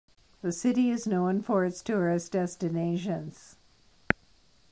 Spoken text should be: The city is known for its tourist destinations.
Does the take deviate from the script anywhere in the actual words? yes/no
no